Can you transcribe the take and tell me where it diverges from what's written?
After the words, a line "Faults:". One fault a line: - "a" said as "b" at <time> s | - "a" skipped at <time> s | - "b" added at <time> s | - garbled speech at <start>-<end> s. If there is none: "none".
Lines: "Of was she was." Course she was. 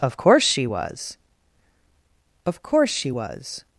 "Of course she was." Of course she was.
Faults:
- "was" said as "course" at 0.2 s
- "Of" added at 2.4 s